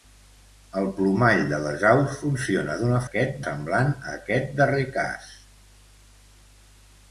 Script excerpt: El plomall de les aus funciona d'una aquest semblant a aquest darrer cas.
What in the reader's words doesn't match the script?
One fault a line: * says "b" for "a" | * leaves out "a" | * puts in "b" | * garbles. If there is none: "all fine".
all fine